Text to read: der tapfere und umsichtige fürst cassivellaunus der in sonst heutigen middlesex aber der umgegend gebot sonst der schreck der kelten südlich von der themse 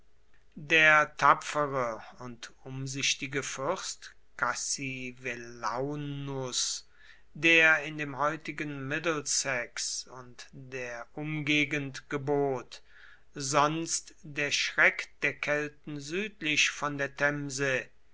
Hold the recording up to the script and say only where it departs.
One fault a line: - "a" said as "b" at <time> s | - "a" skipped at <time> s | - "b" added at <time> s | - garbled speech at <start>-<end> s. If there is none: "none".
- "sonst" said as "dem" at 8.0 s
- "aber" said as "und" at 10.1 s